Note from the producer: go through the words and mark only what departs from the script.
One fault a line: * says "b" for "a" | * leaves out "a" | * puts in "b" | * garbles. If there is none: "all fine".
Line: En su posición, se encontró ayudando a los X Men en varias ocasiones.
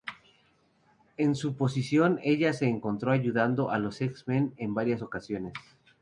* puts in "ella"